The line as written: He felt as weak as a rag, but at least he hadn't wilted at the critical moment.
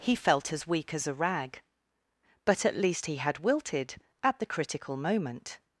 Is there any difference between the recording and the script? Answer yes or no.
yes